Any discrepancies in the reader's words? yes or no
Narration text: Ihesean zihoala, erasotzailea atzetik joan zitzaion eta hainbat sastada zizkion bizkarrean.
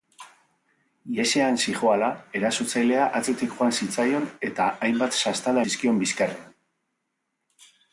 no